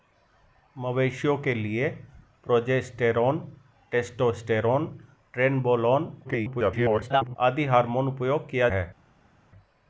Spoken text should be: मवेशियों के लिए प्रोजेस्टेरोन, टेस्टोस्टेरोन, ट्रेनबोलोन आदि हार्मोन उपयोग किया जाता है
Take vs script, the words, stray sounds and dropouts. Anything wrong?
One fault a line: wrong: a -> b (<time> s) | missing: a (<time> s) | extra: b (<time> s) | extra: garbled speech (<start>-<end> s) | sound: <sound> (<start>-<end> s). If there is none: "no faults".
extra: garbled speech (6.2-7.4 s)
missing: जाता (8.7 s)